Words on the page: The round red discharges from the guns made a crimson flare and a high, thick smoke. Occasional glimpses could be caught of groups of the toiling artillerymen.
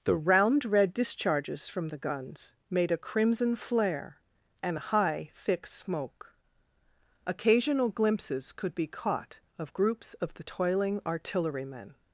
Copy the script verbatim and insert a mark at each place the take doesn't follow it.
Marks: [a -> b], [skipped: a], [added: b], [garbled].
The round red discharges from the guns made a crimson flare and a high, thick smoke. Occasional glimpses could be caught of groups of the toiling artillerymen.